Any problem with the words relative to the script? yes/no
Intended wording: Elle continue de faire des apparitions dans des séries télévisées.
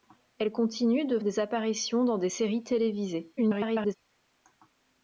yes